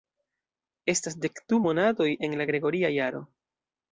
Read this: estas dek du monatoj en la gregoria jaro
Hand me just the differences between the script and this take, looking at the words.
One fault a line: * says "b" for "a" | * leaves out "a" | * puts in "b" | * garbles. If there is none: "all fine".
all fine